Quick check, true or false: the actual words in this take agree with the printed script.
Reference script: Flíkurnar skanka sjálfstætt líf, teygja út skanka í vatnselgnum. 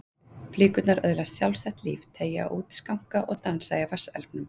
false